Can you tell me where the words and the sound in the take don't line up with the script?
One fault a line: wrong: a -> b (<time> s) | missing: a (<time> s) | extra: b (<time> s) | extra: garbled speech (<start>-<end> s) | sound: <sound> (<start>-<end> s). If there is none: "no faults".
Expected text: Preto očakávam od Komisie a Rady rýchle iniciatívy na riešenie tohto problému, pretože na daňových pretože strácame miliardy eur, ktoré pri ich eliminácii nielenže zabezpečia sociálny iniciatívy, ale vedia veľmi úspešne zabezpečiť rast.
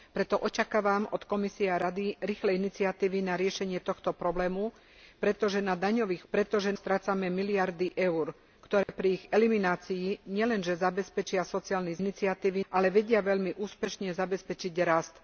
sound: dropout (8.8-8.9 s)